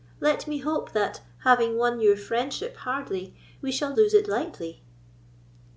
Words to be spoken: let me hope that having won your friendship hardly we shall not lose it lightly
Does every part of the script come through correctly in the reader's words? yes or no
no